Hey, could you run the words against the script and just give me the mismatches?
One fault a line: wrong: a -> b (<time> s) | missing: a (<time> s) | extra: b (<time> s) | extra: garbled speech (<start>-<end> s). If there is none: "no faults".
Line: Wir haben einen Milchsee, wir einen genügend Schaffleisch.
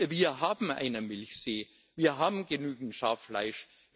wrong: einen -> haben (2.2 s)